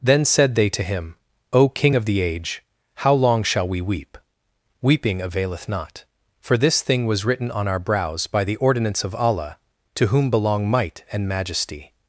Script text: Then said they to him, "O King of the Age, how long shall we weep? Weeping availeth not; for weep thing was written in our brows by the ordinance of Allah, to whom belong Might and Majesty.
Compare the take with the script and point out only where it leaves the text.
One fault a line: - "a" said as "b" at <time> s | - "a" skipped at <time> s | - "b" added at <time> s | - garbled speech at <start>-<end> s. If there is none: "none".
- "weep" said as "this" at 6.6 s
- "in" said as "on" at 7.5 s